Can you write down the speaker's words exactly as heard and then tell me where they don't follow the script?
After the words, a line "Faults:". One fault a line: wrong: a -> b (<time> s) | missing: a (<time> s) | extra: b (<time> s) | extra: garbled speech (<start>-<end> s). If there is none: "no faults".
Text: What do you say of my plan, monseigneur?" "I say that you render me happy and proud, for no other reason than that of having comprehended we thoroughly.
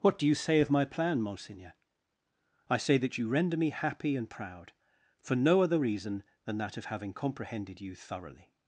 What do you say of my plan, monseigneur?" "I say that you render me happy and proud, for no other reason than that of having comprehended you thoroughly.
Faults:
wrong: we -> you (7.8 s)